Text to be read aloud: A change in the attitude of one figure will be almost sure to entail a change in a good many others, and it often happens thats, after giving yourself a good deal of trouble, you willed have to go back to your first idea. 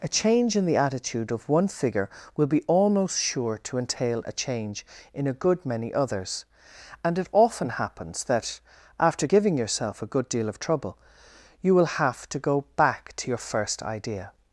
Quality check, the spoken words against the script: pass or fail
fail